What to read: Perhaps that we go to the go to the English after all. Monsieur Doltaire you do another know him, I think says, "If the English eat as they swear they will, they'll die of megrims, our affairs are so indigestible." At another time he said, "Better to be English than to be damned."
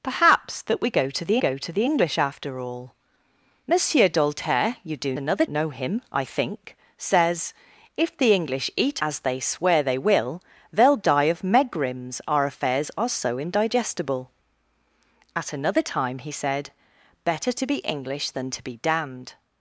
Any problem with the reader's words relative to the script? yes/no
no